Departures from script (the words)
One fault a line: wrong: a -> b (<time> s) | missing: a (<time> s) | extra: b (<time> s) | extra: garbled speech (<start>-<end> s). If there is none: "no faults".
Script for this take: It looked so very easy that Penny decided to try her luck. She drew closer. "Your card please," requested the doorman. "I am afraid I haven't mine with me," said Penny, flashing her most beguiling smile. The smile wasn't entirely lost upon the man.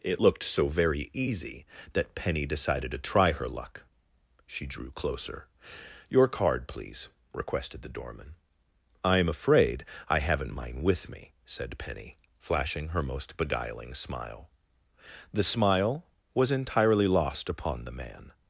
wrong: wasn't -> was (16.3 s)